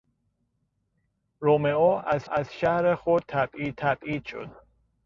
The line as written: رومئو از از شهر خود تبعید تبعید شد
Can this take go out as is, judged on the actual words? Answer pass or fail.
pass